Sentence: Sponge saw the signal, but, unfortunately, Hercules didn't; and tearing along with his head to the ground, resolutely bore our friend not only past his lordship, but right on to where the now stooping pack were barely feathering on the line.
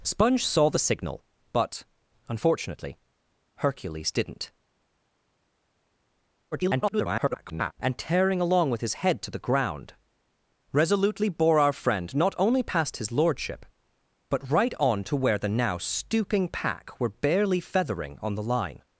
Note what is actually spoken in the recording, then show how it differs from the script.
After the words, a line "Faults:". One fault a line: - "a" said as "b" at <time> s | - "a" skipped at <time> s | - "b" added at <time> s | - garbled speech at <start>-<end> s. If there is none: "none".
Sponge saw the signal, but, unfortunately, Hercules didn't; [garbled] and tearing along with his head to the ground, resolutely bore our friend not only past his lordship, but right on to where the now stooping pack were barely feathering on the line.
Faults:
- garbled speech at 6.5-7.7 s